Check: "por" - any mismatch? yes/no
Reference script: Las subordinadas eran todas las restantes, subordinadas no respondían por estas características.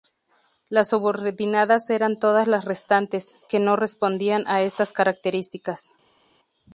yes